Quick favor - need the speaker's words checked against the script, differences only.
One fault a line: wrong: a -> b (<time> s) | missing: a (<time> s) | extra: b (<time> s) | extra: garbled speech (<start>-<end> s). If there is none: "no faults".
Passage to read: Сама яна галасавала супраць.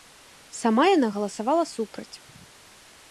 no faults